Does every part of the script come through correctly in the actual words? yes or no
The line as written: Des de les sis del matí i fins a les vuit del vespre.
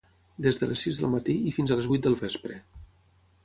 yes